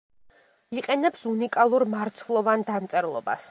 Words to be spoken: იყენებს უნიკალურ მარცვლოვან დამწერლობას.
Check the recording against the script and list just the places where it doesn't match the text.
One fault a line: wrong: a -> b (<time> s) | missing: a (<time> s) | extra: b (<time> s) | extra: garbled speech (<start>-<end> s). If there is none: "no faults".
no faults